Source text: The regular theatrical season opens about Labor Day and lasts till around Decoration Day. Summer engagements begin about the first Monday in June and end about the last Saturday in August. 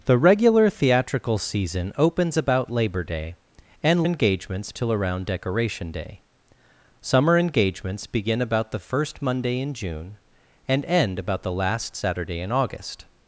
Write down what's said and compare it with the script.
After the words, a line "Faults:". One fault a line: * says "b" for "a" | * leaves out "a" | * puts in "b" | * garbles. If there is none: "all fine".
The regular theatrical season opens about Labor Day and engagements till around Decoration Day. Summer engagements begin about the first Monday in June and end about the last Saturday in August.
Faults:
* says "engagements" for "lasts"